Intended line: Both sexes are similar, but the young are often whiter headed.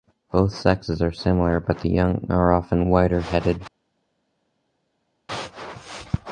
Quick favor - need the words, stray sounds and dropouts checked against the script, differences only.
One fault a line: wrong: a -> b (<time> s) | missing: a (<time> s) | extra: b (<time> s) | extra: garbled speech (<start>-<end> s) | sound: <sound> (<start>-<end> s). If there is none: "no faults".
no faults